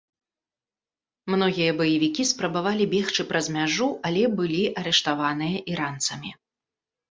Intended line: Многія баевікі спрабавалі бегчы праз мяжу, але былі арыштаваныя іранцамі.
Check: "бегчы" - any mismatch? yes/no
no